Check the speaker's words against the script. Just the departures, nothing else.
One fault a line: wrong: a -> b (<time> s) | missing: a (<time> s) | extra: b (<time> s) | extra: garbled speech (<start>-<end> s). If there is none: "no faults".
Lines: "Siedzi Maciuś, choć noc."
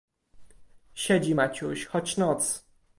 no faults